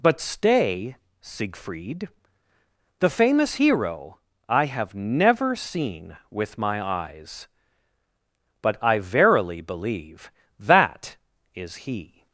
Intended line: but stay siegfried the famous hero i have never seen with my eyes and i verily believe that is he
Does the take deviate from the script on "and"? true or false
true